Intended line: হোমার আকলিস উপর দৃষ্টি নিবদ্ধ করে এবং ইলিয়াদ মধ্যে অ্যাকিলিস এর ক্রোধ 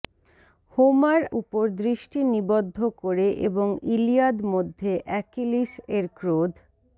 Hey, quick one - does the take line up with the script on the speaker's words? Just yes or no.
no